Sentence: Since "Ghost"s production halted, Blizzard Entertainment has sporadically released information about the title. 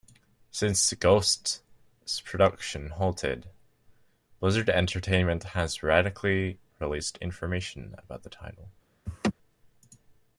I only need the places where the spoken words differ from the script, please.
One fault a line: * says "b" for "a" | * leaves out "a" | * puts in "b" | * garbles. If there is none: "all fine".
all fine